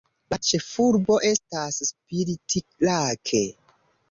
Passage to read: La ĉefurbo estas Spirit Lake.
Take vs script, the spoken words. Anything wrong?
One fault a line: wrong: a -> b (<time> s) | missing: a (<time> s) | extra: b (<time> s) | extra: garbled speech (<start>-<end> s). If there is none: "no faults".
no faults